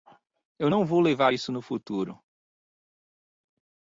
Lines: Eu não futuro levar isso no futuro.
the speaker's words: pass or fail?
fail